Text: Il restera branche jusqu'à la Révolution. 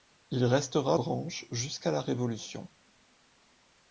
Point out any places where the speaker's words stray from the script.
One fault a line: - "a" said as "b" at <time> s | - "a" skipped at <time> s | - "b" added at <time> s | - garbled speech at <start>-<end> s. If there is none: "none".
none